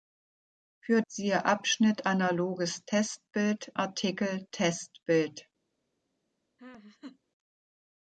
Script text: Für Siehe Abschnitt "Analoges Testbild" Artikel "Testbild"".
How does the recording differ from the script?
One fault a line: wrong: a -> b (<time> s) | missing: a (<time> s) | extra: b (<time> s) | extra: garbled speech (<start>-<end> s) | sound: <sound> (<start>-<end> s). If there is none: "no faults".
sound: laugh (6.6-7.2 s)